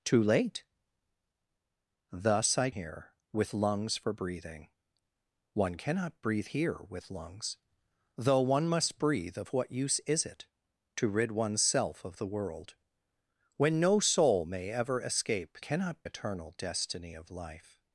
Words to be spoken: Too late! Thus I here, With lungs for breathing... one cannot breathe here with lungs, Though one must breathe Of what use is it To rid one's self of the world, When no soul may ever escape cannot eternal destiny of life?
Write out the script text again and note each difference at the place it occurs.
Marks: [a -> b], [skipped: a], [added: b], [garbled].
Too late! Thus I here, With lungs for breathing... one cannot breathe here with lungs, Though one must breathe Of what use is it To rid one's self of the world, When no soul may ever escape cannot eternal destiny of life?